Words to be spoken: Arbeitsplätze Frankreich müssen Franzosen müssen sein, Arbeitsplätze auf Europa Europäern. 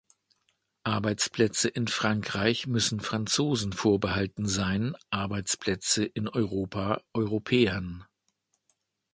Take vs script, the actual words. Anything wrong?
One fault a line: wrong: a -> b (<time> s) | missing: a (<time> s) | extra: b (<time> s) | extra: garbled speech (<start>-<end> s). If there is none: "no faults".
extra: in (1.7 s)
wrong: müssen -> vorbehalten (3.7 s)
wrong: auf -> in (6.0 s)